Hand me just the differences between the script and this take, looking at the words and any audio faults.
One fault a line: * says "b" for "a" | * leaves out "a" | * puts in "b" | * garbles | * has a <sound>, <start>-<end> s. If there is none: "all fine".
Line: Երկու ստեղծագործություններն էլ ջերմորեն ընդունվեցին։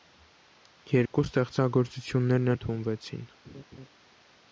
* has a dropout, 1.1-1.1 s
* leaves out "էլ ջերմորեն"
* has a laugh, 3.4-3.9 s